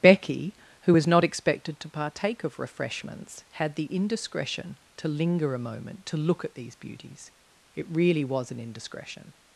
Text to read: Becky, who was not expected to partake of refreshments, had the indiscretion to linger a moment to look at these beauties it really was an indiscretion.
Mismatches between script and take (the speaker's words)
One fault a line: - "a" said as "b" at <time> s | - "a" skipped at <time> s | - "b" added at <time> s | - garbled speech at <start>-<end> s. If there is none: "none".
none